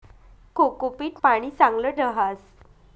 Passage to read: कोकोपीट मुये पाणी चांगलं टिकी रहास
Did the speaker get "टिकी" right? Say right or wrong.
wrong